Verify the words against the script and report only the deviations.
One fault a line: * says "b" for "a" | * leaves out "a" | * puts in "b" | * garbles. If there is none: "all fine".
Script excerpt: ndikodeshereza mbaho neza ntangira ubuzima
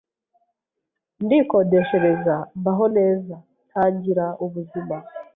all fine